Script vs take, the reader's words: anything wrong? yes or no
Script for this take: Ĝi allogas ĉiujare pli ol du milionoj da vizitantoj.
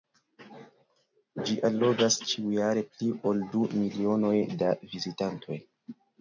no